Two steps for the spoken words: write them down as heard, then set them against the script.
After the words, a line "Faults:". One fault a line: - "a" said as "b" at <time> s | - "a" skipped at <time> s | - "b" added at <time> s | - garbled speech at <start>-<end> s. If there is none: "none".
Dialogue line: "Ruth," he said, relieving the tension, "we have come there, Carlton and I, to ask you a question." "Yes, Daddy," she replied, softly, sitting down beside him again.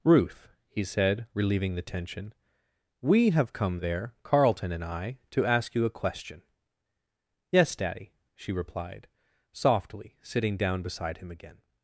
"Ruth," he said, relieving the tension, "we have come there, Carlton and I, to ask you a question." "Yes, Daddy," she replied, softly, sitting down beside him again.
Faults:
none